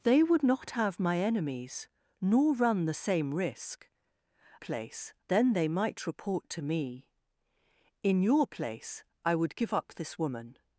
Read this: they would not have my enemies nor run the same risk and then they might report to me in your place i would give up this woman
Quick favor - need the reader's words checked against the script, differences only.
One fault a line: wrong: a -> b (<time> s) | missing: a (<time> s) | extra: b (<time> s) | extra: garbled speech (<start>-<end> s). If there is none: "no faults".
wrong: and -> place (4.6 s)